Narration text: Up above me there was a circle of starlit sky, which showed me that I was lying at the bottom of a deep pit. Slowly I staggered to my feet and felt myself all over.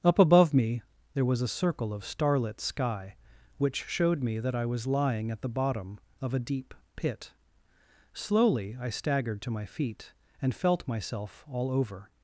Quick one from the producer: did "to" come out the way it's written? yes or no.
yes